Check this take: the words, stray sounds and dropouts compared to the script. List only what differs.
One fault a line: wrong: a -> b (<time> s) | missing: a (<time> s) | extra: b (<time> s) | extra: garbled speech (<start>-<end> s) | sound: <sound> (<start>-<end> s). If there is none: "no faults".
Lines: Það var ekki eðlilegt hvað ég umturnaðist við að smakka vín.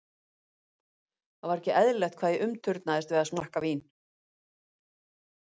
no faults